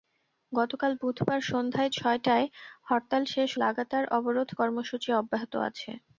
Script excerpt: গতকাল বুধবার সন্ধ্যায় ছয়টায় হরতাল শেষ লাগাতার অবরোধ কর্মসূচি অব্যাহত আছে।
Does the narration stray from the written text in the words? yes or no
no